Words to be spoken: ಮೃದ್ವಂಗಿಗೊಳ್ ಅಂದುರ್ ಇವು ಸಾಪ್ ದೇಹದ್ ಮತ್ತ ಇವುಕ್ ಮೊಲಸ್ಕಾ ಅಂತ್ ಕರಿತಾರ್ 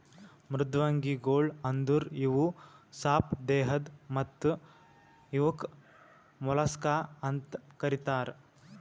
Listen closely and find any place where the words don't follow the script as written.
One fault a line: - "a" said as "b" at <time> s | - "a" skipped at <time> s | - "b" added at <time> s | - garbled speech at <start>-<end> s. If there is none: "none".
none